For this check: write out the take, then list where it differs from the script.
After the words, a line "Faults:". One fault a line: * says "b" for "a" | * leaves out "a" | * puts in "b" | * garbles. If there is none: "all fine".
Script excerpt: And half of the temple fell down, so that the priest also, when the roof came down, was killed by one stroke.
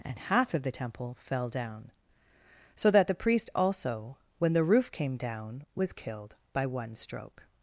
And half of the temple fell down, so that the priest also, when the roof came down, was killed by one stroke.
Faults:
all fine